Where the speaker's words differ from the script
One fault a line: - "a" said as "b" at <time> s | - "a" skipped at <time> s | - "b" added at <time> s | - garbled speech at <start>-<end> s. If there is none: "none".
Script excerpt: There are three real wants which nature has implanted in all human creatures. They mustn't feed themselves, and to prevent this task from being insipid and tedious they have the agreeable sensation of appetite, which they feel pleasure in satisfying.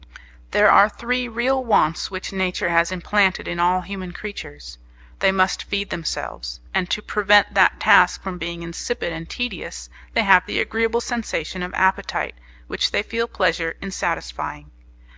- "mustn't" said as "must" at 5.3 s
- "this" said as "that" at 7.5 s